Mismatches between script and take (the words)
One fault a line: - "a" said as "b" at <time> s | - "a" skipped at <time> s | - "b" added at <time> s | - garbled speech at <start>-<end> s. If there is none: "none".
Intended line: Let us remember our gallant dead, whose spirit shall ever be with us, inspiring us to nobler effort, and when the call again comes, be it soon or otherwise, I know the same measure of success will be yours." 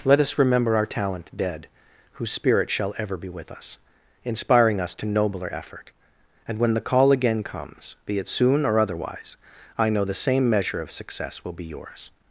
- "gallant" said as "talent" at 0.8 s